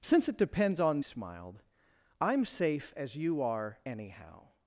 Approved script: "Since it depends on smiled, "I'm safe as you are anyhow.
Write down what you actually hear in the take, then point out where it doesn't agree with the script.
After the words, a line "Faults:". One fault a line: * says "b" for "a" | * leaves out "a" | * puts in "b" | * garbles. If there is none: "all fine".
"Since it depends on smiled, "I'm safe as you are anyhow.
Faults:
all fine